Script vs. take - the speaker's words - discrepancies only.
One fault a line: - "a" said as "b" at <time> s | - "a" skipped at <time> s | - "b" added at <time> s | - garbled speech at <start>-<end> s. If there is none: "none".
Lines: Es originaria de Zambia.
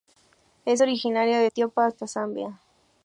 - "Etiopía hasta" added at 1.4 s